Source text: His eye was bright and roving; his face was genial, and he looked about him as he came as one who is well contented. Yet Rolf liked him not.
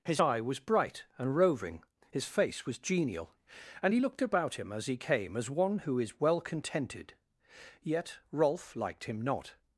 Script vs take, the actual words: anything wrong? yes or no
no